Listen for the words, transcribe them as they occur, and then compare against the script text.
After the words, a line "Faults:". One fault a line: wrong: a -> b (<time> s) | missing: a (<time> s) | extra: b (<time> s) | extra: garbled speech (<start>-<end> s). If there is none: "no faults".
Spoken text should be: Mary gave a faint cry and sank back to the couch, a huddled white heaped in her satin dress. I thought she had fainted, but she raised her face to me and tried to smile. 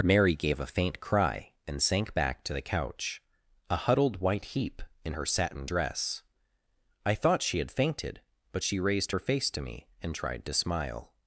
Mary gave a faint cry and sank back to the couch, a huddled white heap in her satin dress. I thought she had fainted, but she raised her face to me and tried to smile.
Faults:
wrong: heaped -> heap (4.5 s)